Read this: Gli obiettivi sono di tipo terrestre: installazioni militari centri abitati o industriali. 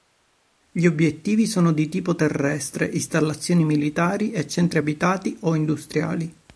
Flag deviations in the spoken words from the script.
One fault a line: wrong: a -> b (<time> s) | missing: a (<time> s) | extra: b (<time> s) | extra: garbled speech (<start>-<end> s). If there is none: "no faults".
extra: e (4.3 s)